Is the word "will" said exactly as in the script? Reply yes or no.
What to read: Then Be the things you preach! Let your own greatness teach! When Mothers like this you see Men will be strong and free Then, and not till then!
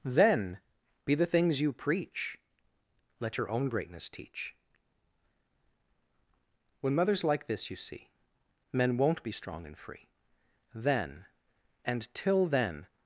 no